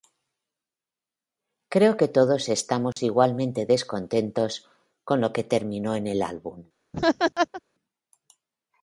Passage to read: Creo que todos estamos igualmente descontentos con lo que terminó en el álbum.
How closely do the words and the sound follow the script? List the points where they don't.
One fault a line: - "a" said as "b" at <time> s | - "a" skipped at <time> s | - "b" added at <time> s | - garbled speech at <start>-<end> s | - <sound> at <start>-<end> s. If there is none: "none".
- dropout at 2.9-3.0 s
- laugh at 6.9-7.6 s